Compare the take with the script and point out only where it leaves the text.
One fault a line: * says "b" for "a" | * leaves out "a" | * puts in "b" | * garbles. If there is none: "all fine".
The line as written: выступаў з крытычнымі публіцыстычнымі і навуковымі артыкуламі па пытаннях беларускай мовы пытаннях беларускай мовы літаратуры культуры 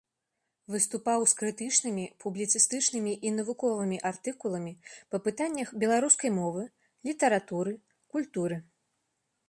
* leaves out "пытаннях беларускай мовы"